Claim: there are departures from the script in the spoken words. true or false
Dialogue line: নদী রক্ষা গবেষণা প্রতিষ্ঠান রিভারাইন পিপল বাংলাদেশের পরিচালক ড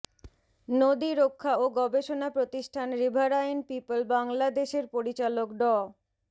true